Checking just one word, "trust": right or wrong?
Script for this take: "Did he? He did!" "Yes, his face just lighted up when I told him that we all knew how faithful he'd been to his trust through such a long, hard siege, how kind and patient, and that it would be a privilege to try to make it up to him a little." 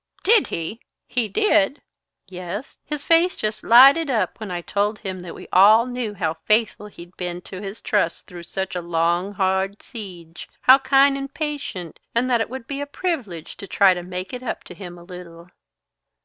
right